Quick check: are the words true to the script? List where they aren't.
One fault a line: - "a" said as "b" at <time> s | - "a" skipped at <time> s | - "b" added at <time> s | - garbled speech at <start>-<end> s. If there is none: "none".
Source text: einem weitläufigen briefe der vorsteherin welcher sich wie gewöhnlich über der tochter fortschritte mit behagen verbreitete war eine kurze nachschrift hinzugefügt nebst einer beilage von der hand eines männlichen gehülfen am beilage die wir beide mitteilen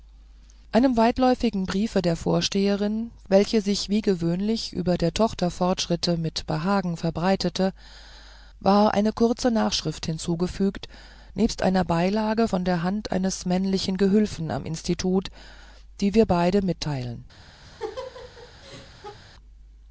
- "beilage" said as "institut" at 14.6 s